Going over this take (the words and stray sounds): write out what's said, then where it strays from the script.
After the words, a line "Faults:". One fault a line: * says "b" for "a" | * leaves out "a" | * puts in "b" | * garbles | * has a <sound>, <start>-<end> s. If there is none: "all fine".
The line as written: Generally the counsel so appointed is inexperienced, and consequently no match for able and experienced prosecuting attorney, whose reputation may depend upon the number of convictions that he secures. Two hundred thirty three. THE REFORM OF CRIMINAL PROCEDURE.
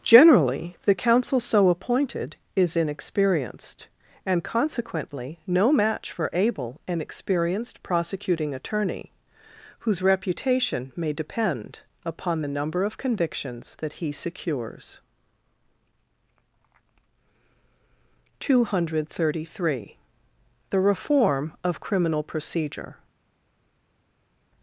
Generally the counsel so appointed is inexperienced, and consequently no match for able and experienced prosecuting attorney, whose reputation may depend upon the number of convictions that he secures. Two hundred thirty three. THE REFORM OF CRIMINAL PROCEDURE.
Faults:
all fine